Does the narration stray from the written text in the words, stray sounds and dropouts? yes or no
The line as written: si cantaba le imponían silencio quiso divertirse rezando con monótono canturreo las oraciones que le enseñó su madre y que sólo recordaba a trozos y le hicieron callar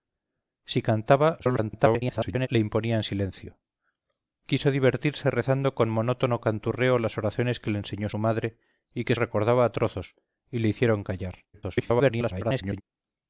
yes